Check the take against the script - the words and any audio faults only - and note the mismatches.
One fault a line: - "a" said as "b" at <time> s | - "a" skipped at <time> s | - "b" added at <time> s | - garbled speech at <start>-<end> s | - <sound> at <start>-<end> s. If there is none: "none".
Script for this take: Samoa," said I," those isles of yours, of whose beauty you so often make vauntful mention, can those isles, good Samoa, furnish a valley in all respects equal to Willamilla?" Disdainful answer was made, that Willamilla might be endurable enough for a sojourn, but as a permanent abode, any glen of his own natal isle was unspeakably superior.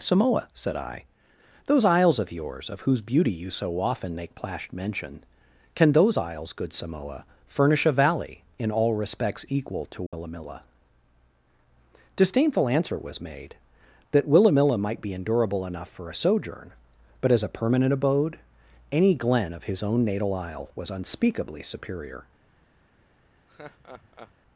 - "vauntful" said as "plashed" at 4.3 s
- dropout at 10.1-10.1 s
- laugh at 23.5-24.3 s